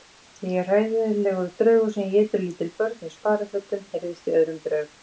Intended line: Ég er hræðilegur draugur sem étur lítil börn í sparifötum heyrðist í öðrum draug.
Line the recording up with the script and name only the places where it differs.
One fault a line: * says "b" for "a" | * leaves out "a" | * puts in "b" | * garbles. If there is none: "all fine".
all fine